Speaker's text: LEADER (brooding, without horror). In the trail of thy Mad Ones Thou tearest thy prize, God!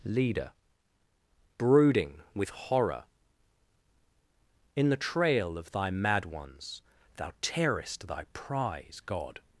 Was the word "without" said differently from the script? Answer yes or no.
yes